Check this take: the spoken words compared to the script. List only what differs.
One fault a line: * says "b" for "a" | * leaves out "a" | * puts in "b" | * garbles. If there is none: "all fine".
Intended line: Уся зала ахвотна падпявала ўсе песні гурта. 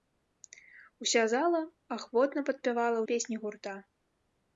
* leaves out "ўсе"